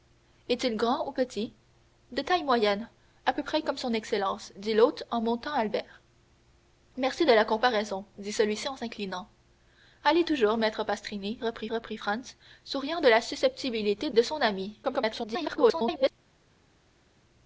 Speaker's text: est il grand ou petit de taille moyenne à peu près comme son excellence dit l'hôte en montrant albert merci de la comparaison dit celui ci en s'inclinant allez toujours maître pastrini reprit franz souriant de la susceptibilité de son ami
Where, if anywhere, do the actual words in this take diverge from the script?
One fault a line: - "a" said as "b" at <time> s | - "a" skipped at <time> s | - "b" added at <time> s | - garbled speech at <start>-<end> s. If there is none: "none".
- "reprit" added at 11.7 s
- garbled speech at 14.8-16.1 s